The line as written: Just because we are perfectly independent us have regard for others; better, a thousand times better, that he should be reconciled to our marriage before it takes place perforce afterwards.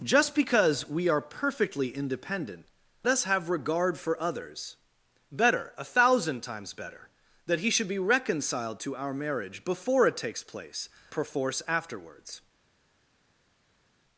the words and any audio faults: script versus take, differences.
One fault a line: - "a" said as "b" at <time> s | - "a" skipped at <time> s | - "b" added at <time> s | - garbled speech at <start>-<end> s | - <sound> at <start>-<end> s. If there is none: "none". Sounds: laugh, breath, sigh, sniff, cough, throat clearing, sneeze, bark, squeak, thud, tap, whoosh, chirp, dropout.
none